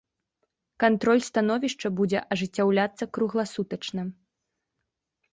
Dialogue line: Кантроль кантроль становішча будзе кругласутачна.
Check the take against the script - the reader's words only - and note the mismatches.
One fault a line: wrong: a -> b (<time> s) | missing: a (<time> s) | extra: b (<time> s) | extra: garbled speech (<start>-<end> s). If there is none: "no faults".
missing: кантроль (1.2 s)
extra: ажыццяўляцца (2.4 s)